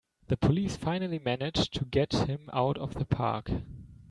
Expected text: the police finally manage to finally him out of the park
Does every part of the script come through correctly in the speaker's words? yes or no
no